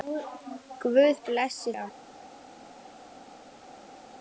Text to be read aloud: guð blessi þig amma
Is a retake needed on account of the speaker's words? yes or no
yes